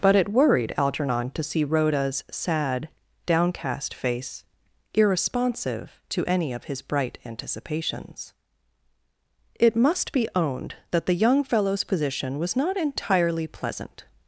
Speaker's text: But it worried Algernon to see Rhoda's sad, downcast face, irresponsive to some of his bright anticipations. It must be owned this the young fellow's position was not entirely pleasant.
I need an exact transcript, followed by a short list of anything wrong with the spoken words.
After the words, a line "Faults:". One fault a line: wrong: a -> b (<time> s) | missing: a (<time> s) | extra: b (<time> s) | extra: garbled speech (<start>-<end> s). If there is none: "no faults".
But it worried Algernon to see Rhoda's sad, downcast face, irresponsive to any of his bright anticipations. It must be owned that the young fellow's position was not entirely pleasant.
Faults:
wrong: some -> any (6.2 s)
wrong: this -> that (10.9 s)